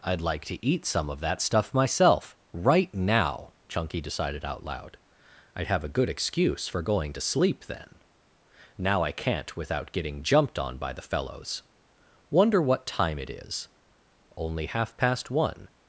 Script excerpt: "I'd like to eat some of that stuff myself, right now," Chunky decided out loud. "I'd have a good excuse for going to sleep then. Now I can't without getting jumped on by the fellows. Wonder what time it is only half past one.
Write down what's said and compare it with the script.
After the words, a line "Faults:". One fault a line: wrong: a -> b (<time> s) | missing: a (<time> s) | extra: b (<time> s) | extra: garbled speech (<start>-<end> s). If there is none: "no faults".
"I'd like to eat some of that stuff myself, right now," Chunky decided out loud. "I'd have a good excuse for going to sleep then. Now I can't without getting jumped on by the fellows. Wonder what time it is only half past one.
Faults:
no faults